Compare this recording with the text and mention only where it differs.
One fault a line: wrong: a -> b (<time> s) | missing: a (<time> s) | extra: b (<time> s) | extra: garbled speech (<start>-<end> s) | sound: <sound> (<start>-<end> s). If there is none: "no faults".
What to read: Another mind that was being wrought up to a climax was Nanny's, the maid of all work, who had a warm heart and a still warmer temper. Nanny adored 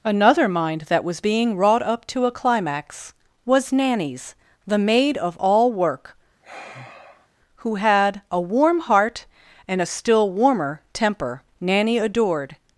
sound: sigh (6.4-7.3 s)